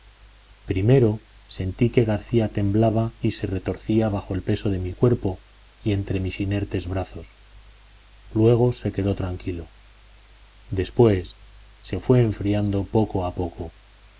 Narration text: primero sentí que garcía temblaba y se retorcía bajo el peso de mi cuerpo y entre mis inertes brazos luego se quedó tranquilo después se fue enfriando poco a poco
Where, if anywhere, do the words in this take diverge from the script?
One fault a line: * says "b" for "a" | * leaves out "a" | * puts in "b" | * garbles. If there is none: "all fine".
all fine